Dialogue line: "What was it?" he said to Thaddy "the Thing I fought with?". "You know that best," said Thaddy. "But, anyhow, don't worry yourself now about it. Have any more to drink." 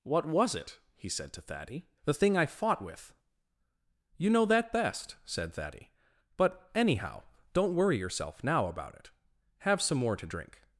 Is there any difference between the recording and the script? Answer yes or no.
yes